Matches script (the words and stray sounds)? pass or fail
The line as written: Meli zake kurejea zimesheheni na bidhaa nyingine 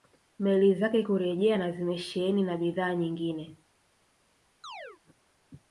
fail